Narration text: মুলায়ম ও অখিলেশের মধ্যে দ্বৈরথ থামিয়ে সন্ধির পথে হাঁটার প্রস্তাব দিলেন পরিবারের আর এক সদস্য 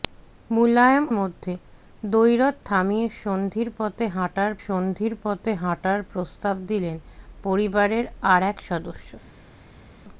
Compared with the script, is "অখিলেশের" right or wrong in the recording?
wrong